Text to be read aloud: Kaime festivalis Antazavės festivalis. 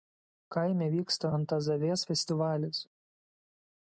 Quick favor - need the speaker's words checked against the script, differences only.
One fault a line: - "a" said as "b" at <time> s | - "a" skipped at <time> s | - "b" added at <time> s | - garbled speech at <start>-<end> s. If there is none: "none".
- "festivalis" said as "vyksta" at 0.9 s